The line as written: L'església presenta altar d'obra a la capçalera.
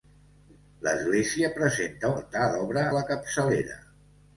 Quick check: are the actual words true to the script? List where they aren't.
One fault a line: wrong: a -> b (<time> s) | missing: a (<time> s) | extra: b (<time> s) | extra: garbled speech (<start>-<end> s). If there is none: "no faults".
no faults